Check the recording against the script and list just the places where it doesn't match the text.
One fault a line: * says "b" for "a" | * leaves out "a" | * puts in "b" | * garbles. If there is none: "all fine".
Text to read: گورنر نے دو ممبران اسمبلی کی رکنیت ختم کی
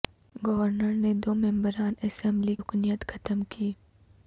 * leaves out "کی"